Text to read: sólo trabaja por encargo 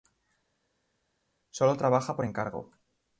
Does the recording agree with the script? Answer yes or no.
yes